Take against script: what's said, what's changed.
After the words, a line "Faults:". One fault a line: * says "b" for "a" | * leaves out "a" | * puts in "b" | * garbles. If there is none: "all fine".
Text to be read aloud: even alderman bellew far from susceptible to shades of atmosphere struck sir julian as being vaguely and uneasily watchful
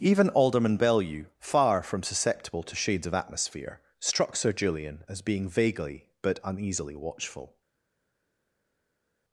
even alderman bellew far from susceptible to shades of atmosphere struck sir julian as being vaguely but uneasily watchful
Faults:
* says "but" for "and"